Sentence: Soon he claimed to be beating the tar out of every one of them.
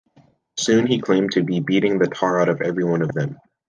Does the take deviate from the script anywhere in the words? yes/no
no